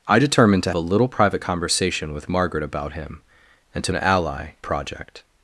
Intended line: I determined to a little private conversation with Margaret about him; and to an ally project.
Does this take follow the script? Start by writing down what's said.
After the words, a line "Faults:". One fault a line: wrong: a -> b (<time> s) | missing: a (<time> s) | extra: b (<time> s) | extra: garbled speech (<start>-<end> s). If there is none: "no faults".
I determined to a little private conversation with Margaret about him; and to an ally project.
Faults:
no faults